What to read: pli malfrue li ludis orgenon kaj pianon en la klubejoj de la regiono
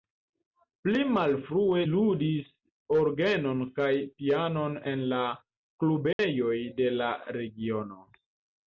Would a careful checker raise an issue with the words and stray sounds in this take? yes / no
yes